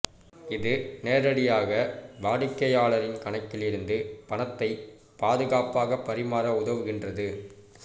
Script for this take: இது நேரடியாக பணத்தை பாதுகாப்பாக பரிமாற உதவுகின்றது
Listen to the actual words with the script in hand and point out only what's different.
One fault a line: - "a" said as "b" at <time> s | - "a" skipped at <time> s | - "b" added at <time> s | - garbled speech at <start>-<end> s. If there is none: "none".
- "வாடிக்கையாளரின் கணக்கில் இருந்து" added at 2.2 s